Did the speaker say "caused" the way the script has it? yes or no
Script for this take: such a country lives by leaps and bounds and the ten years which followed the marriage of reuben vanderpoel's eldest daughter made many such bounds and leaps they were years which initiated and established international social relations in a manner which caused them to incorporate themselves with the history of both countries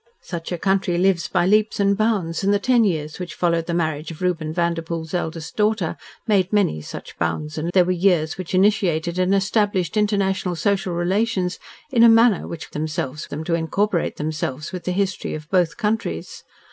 no